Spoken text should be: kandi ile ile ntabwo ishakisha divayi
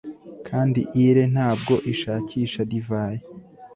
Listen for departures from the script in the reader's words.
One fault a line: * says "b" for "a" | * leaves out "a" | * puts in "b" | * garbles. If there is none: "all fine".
* leaves out "ile"